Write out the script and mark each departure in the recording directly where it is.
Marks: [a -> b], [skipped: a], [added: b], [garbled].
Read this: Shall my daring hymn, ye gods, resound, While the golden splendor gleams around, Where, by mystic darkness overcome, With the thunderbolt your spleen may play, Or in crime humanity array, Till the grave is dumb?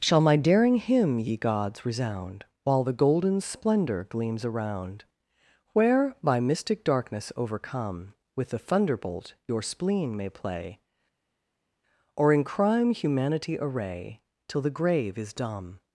Shall my daring hymn, ye gods, resound, While the golden splendor gleams around, Where, by mystic darkness overcome, With the thunderbolt your spleen may play, Or in crime humanity array, Till the grave is dumb?